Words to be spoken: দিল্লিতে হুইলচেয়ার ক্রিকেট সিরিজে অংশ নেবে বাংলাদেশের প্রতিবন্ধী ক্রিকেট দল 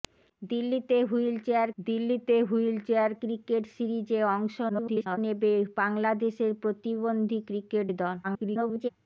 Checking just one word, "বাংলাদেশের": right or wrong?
right